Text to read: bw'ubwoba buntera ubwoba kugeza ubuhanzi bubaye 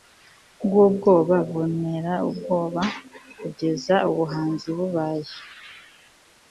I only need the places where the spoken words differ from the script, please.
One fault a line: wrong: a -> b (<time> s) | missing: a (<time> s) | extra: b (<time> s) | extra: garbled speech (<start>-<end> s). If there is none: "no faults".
no faults